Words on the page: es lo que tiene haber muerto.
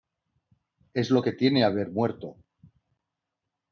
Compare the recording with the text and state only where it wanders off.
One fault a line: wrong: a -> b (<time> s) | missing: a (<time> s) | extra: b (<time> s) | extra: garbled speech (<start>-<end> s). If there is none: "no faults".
no faults